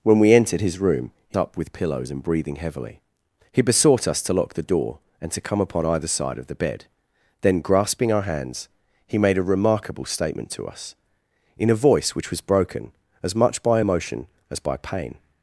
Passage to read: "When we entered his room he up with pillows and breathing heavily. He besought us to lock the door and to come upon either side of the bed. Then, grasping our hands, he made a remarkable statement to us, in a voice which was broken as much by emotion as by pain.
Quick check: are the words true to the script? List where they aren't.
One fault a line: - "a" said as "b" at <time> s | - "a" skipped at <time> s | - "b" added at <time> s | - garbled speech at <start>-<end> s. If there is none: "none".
none